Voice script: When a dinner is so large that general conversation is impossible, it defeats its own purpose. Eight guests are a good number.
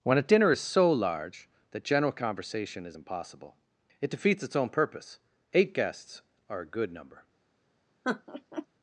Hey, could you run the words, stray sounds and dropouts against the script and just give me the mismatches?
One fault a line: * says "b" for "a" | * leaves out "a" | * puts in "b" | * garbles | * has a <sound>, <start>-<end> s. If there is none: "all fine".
* has a laugh, 8.0-8.7 s